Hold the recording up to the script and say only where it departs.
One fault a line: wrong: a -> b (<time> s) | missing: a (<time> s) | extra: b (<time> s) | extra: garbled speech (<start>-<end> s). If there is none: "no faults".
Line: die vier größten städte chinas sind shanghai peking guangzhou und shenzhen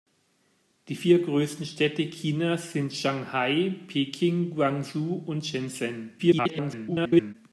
extra: garbled speech (6.2-7.3 s)